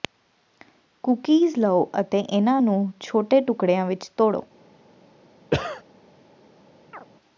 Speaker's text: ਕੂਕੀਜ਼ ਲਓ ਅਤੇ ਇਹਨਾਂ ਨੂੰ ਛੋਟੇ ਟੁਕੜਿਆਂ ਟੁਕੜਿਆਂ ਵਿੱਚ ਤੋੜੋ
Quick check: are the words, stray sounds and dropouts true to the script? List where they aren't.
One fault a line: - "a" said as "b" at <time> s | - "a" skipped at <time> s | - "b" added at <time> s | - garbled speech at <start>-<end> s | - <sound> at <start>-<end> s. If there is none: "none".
- "ਟੁਕੜਿਆਂ" skipped at 3.9 s
- cough at 5.5-5.8 s
- chirp at 6.9-7.1 s